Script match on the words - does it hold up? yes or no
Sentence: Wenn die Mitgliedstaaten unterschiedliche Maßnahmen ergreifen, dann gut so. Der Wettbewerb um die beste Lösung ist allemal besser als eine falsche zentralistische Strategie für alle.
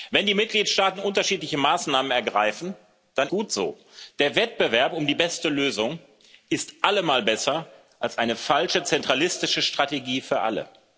yes